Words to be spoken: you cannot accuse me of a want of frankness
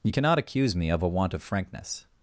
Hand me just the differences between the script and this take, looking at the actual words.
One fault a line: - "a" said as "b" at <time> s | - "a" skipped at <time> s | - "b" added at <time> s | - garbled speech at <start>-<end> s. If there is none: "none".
none